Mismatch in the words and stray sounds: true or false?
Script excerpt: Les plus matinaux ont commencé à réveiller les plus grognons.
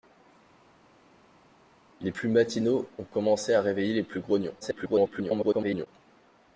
true